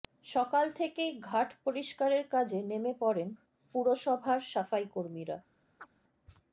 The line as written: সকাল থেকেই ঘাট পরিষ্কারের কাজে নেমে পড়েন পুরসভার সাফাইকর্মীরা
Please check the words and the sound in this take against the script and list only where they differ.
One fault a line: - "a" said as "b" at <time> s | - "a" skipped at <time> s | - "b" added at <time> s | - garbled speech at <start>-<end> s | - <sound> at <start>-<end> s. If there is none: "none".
- chirp at 5.8-5.9 s